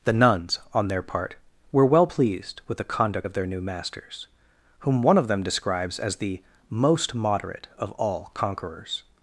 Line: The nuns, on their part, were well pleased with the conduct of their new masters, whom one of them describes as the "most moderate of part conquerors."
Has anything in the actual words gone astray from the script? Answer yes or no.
yes